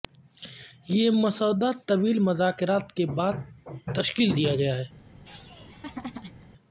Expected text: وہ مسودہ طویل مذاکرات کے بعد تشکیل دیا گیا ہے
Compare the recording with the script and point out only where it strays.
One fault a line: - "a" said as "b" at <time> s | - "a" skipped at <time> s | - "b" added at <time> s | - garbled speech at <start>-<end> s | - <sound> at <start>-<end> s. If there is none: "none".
- "وہ" said as "یہ" at 0.9 s
- laugh at 5.2-6.5 s